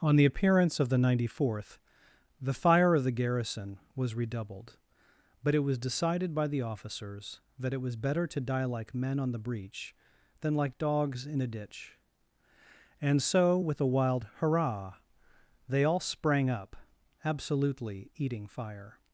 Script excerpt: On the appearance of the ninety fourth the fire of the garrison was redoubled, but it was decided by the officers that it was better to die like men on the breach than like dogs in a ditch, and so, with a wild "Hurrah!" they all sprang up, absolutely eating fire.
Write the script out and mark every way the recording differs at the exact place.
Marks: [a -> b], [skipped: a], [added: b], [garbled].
On the appearance of the ninety fourth the fire of the garrison was redoubled, but it was decided by the officers that it was better to die like men on the breach than like dogs in a ditch, and so, with a wild "Hurrah!" they all sprang up, absolutely eating fire.